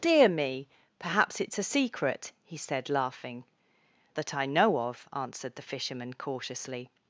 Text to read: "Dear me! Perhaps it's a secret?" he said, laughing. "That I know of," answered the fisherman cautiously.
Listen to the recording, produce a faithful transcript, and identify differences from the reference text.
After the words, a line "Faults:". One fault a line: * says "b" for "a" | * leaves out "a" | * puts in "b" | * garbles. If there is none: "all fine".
"Dear me! Perhaps it's a secret?" he said, laughing. "That I know of," answered the fisherman cautiously.
Faults:
all fine